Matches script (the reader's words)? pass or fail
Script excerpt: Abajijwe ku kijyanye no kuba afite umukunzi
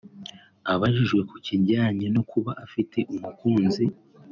pass